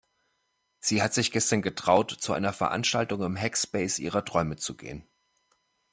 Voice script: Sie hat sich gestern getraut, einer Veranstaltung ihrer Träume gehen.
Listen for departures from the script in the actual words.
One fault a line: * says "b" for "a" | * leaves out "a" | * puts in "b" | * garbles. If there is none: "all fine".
* puts in "zu"
* puts in "im Hackspace"
* puts in "zu"